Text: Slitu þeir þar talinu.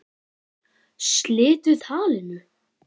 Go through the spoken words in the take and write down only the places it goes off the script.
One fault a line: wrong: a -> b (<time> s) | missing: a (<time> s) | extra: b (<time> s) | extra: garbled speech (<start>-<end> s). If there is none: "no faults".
missing: þeir þar (1.8 s)